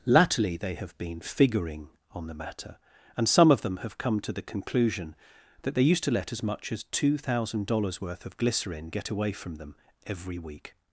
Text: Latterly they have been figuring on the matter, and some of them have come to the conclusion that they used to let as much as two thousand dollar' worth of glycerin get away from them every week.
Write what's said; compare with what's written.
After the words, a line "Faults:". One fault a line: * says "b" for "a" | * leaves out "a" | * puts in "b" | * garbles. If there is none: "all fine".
Latterly they have been figuring on the matter, and some of them have come to the conclusion that they used to let as much as two thousand dollars' worth of glycerin get away from them every week.
Faults:
* says "dollars" for "dollar"